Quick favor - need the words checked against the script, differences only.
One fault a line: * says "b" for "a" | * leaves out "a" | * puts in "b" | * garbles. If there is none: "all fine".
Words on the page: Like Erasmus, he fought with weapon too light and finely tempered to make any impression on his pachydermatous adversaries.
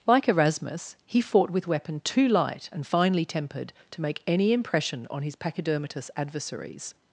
all fine